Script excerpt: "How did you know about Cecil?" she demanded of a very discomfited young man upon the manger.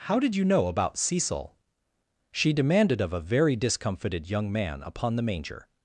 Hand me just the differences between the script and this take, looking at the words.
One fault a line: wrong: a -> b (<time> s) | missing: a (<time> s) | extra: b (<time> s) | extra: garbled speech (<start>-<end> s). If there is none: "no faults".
no faults